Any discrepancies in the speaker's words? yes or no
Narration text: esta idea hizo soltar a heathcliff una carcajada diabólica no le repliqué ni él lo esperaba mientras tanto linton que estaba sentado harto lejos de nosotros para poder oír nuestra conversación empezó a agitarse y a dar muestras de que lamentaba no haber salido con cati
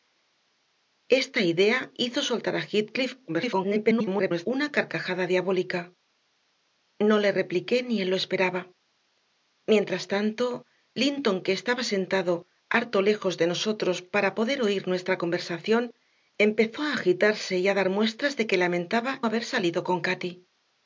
yes